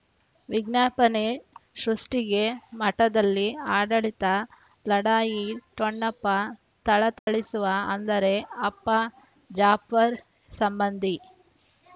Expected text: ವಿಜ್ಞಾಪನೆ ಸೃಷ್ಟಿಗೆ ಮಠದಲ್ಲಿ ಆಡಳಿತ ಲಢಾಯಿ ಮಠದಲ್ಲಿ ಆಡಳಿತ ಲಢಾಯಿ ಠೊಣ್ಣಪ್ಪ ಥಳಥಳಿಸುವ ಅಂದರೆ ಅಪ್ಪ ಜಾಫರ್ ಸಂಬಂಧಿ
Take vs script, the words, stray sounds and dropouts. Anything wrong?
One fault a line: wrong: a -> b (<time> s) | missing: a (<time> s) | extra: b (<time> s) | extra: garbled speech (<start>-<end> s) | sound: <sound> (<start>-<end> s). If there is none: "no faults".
missing: ಮಠದಲ್ಲಿ ಆಡಳಿತ ಲಢಾಯಿ (5.5 s)
sound: dropout (7.2-7.3 s)